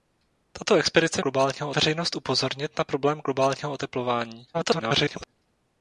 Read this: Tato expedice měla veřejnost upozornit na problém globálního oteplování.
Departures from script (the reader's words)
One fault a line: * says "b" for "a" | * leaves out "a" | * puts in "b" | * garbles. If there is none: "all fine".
* says "globálního" for "měla"
* garbles